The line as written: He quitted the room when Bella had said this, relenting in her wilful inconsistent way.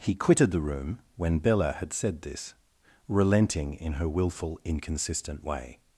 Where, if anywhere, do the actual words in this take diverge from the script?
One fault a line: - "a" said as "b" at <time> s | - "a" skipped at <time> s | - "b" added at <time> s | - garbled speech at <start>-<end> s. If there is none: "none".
none